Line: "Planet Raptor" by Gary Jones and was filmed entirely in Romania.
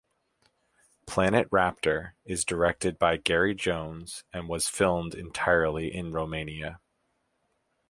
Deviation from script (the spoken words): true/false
true